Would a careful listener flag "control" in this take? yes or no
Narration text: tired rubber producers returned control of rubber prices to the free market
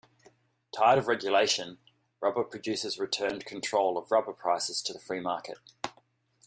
no